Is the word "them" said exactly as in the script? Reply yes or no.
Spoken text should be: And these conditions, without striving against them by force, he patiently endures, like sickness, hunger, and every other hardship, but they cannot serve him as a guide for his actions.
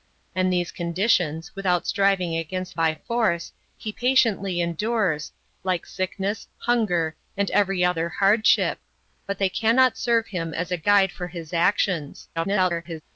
no